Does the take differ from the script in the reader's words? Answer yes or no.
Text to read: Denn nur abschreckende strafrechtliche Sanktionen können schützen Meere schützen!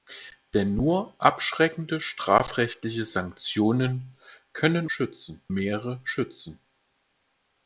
no